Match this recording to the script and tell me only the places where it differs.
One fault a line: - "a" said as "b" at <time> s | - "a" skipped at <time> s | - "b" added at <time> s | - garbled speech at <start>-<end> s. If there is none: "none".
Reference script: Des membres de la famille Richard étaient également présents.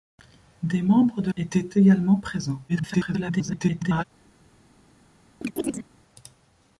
- "la famille Richard" skipped at 1.3 s
- garbled speech at 2.7-4.0 s